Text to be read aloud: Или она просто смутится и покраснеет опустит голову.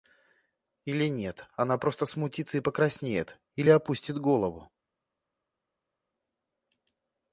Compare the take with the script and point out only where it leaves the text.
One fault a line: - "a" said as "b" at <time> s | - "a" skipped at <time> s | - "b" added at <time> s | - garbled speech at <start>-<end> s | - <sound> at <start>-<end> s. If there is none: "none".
- "нет" added at 1.1 s
- "или" added at 3.6 s